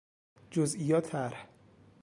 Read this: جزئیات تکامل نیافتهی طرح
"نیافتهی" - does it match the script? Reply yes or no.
no